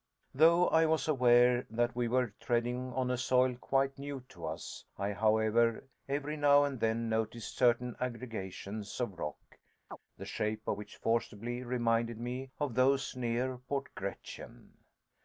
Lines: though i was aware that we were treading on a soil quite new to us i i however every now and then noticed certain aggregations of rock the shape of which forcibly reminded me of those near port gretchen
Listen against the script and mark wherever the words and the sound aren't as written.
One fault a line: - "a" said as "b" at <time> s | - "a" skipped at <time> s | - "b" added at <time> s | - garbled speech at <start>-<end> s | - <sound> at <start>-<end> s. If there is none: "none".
- "i" skipped at 5.1 s
- chirp at 9.9-10.0 s